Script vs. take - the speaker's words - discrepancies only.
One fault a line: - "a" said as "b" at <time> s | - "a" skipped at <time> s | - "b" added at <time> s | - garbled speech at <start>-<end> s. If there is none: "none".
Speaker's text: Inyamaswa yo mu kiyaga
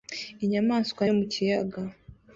none